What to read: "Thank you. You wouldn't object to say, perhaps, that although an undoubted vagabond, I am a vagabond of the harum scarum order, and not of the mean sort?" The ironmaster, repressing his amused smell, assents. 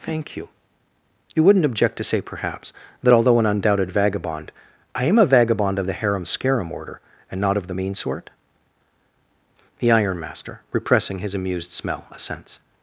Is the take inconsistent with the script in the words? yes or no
no